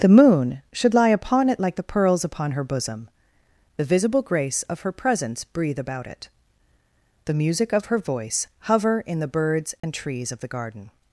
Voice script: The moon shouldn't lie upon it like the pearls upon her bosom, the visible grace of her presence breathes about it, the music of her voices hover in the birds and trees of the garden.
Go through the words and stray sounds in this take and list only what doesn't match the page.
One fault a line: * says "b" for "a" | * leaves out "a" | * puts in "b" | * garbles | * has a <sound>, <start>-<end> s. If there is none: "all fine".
* says "should" for "shouldn't"
* says "breathe" for "breathes"
* says "voice" for "voices"
* has a dropout, 9.8-9.8 s